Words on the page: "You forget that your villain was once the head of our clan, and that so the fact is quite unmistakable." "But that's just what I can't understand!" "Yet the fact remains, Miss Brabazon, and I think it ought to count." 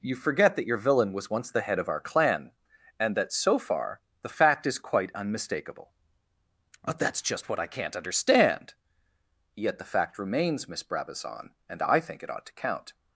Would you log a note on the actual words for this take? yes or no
yes